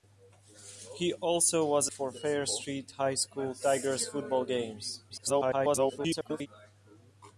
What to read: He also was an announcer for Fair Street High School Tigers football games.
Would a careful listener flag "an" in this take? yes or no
yes